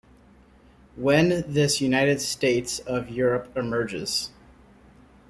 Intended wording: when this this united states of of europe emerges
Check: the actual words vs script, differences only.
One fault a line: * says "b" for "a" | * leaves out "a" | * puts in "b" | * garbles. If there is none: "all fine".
* leaves out "this"
* leaves out "of"